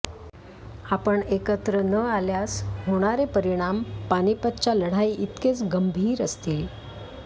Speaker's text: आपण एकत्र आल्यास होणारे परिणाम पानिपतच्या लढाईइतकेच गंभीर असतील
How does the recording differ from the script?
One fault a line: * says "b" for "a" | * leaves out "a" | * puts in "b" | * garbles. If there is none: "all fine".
* puts in "न"